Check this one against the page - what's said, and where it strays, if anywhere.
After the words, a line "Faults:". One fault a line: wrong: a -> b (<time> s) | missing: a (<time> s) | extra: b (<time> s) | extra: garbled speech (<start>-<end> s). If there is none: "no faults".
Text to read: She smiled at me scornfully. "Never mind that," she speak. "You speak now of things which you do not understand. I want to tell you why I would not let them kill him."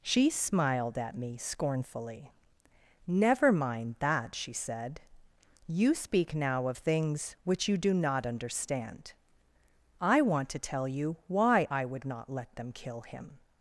She smiled at me scornfully. "Never mind that," she said. "You speak now of things which you do not understand. I want to tell you why I would not let them kill him."
Faults:
wrong: speak -> said (4.5 s)